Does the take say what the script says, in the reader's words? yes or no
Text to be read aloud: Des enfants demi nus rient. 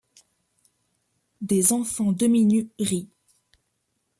yes